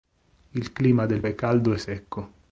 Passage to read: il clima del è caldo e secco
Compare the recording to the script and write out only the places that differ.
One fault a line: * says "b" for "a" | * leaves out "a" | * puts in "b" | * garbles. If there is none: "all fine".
all fine